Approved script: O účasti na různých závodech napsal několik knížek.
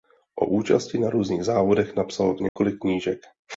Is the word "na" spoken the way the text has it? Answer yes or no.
yes